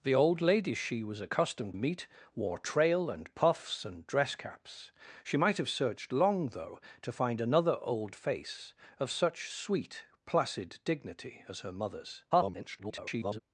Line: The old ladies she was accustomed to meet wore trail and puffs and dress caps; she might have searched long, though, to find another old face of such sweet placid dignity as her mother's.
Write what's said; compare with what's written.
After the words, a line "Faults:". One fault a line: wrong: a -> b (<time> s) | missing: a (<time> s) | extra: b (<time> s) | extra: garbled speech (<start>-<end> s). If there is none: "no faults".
The old ladies she was accustomed meet wore trail and puffs and dress caps; she might have searched long, though, to find another old face of such sweet placid dignity as her mother's. [garbled]
Faults:
missing: to (1.8 s)
extra: garbled speech (12.3-13.4 s)